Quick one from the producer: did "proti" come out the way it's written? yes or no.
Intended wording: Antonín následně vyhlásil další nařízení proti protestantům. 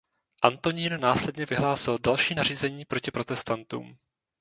yes